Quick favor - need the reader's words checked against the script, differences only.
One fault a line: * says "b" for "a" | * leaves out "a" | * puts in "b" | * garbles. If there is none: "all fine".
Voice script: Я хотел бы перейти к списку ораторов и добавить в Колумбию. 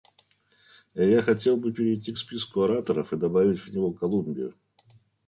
* puts in "него"